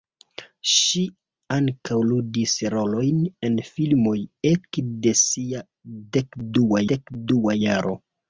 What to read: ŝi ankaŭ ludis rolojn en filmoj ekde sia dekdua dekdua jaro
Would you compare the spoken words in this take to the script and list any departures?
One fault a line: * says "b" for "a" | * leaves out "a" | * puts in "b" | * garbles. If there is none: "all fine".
all fine